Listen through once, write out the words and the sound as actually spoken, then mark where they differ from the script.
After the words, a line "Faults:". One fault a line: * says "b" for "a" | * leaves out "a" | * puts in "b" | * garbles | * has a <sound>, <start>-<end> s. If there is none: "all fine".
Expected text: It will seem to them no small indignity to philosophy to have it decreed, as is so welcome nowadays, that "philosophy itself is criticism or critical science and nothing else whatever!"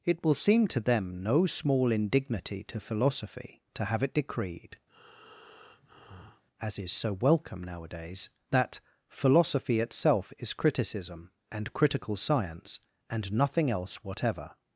It will seem to them no small indignity to philosophy to have it decreed, as is so welcome nowadays, that "philosophy itself is criticism and critical science and nothing else whatever!"
Faults:
* has a breath, 4.9-6.4 s
* says "and" for "or"